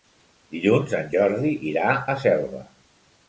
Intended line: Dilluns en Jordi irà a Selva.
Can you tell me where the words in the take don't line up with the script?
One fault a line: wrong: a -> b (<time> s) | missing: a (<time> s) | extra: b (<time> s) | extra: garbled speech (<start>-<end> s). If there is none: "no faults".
no faults